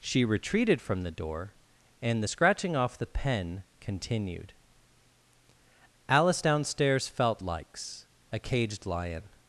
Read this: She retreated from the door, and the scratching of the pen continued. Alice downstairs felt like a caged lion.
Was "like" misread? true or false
true